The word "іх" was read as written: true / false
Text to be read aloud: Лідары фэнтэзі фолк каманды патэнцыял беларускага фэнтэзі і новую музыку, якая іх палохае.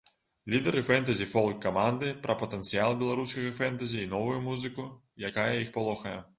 true